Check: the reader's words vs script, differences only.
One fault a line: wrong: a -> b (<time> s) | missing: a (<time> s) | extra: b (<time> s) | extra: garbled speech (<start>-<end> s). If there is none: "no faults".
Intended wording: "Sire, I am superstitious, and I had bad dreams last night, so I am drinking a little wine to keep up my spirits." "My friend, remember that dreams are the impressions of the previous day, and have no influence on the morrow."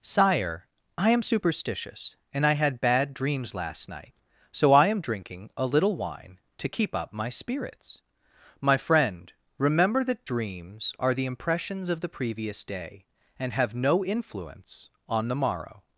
no faults